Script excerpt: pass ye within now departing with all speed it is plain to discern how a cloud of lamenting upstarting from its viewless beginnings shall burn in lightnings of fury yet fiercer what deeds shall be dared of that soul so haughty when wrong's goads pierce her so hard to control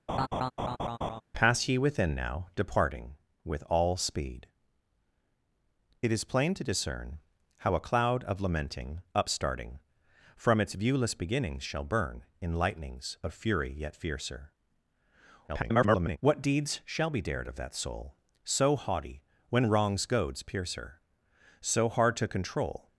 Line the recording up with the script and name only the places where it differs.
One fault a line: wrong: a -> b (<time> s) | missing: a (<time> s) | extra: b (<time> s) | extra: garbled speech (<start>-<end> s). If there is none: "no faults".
extra: garbled speech (15.5-16.2 s)